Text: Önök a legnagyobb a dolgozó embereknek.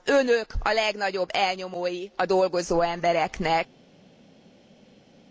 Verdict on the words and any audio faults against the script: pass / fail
fail